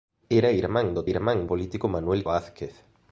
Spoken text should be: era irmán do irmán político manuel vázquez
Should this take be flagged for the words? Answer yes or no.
no